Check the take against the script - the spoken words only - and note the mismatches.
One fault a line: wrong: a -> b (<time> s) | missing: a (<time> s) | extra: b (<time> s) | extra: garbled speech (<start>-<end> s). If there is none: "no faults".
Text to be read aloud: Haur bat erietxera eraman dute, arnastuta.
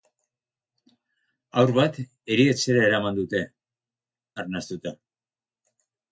no faults